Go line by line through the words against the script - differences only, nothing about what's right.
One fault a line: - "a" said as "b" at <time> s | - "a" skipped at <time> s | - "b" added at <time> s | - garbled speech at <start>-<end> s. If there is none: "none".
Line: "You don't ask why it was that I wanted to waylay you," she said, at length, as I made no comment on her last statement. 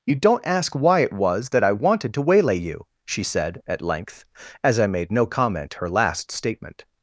- "on" skipped at 5.7 s